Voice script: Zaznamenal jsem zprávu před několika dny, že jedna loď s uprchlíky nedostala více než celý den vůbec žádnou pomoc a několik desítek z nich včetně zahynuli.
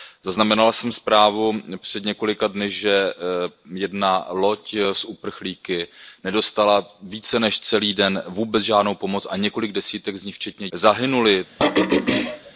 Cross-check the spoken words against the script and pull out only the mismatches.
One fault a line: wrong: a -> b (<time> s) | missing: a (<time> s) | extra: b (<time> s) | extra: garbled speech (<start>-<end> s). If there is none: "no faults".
no faults